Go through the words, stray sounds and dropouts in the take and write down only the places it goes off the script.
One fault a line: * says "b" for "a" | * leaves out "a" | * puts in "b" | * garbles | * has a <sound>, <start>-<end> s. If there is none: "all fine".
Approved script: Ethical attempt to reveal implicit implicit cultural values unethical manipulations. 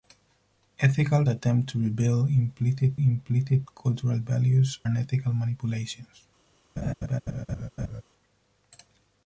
* has a laugh, 6.8-8.0 s